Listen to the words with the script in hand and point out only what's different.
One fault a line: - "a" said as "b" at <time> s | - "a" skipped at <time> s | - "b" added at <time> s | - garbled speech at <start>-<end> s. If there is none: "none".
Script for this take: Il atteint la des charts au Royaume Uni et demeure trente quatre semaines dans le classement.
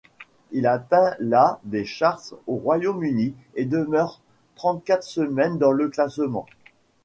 none